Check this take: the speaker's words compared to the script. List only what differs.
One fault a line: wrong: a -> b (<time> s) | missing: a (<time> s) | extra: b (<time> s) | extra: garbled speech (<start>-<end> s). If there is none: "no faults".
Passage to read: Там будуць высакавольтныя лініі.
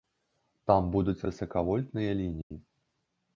no faults